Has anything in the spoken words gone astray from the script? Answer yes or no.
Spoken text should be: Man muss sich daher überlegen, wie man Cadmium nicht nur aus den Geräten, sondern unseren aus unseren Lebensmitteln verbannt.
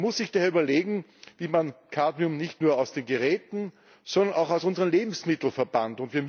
yes